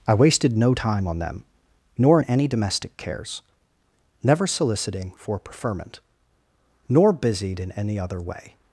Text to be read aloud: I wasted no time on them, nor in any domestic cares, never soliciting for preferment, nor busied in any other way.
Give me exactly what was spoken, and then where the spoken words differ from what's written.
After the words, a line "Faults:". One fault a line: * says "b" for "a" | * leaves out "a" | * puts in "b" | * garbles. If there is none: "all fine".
I wasted no time on them, nor in any domestic cares, never soliciting for preferment, nor busied in any other way.
Faults:
all fine